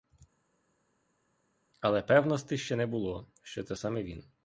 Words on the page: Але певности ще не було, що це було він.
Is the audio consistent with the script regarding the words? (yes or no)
no